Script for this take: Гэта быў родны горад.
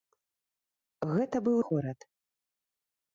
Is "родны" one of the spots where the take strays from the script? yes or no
yes